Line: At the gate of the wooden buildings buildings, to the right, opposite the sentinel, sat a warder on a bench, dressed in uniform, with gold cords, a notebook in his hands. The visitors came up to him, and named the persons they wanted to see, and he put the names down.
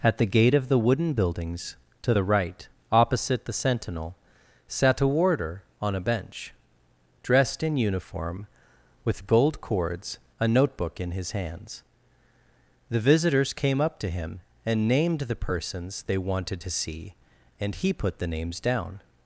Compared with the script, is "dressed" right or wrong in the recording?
right